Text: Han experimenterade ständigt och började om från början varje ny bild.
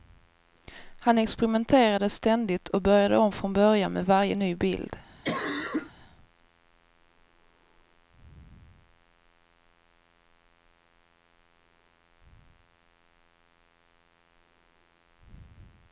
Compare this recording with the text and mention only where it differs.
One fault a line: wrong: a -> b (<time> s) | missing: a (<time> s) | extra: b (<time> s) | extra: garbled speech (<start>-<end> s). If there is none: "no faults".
extra: med (3.9 s)